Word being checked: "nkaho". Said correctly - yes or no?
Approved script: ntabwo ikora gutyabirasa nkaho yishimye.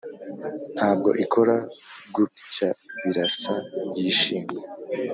no